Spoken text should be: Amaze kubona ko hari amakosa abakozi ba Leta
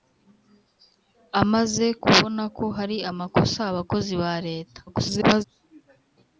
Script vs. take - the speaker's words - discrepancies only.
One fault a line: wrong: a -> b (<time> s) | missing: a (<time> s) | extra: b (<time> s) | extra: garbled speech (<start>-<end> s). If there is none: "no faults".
extra: garbled speech (4.9-5.4 s)